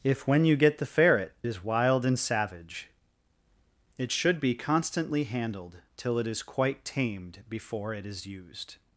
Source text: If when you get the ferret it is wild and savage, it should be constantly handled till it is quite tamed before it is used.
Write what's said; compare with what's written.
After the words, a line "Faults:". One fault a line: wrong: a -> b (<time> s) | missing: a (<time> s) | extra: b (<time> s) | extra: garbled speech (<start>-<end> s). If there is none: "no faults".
If when you get the ferret is wild and savage, it should be constantly handled till it is quite tamed before it is used.
Faults:
missing: it (1.3 s)